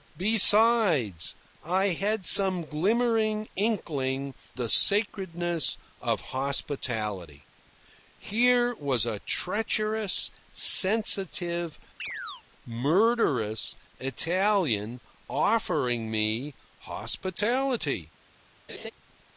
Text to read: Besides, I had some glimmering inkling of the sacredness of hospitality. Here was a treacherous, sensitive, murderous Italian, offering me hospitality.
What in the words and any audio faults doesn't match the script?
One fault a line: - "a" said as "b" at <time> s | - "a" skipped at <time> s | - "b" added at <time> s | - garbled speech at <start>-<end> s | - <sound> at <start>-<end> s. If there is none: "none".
- "of" skipped at 4.3 s
- chirp at 12.0-12.4 s
- laugh at 18.7-18.9 s